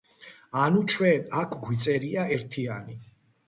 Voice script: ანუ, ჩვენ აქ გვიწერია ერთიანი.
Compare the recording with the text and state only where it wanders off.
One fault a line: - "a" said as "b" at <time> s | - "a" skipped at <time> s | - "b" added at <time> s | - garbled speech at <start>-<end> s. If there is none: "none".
none